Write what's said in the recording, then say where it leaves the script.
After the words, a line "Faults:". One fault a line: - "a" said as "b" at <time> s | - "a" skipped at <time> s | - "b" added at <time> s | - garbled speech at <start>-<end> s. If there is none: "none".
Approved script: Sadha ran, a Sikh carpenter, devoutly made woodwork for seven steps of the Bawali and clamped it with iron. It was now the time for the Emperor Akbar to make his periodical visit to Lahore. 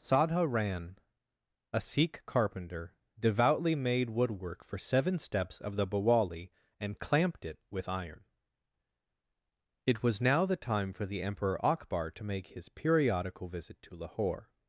Sadha ran, a Sikh carpenter, devoutly made woodwork for seven steps of the Bawali and clamped it with iron. It was now the time for the Emperor Akbar to make his periodical visit to Lahore.
Faults:
none